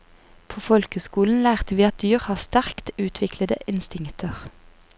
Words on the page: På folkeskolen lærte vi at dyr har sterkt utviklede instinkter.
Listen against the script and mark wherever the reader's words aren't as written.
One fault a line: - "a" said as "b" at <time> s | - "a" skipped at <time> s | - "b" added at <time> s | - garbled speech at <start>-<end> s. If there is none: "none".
none